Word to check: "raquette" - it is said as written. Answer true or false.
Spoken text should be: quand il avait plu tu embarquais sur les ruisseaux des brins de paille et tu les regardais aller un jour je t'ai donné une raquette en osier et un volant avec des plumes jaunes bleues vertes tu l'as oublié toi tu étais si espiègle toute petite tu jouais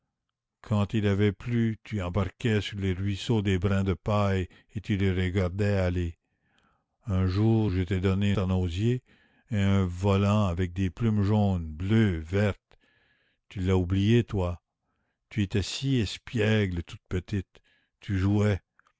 false